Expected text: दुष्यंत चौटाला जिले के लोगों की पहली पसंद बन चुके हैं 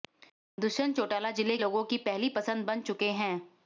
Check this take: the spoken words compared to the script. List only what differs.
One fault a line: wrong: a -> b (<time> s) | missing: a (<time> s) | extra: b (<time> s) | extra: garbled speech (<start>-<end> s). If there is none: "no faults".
missing: के (1.6 s)